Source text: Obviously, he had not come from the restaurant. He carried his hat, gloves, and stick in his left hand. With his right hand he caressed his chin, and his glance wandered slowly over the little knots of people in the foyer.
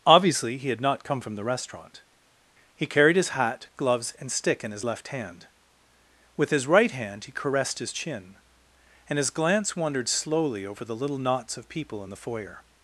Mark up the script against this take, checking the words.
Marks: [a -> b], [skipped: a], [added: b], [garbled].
Obviously, he had not come from the restaurant. He carried his hat, gloves, and stick in his left hand. With his right hand he caressed his chin, and his glance wandered slowly over the little knots of people in the foyer.